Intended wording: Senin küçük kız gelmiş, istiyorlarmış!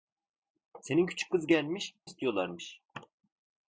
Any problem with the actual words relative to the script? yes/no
no